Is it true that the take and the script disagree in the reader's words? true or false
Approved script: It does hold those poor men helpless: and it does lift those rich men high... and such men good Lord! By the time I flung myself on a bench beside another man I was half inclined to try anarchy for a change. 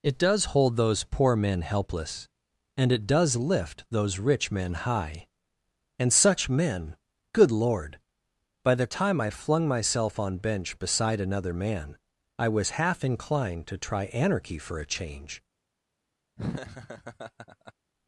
true